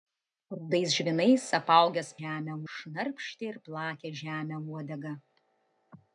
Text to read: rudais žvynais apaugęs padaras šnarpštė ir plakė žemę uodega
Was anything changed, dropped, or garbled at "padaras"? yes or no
yes